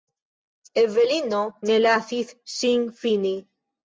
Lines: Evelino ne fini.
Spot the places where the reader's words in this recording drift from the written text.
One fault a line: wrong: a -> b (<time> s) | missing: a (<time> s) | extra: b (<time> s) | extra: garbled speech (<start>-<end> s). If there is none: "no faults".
extra: lasis ŝin (1.9 s)